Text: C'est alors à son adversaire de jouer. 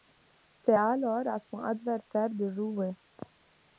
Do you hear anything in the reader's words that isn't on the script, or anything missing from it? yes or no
no